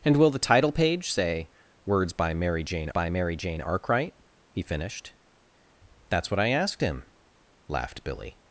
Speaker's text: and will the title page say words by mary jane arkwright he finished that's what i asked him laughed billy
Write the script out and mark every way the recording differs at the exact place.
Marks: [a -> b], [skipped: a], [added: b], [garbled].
and will the title page say words by mary jane [added: by mary jane] arkwright he finished that's what i asked him laughed billy